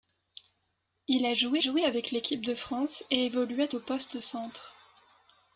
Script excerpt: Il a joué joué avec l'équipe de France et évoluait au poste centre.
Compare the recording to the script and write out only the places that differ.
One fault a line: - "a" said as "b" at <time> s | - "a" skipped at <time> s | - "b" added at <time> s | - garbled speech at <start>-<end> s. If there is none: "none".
none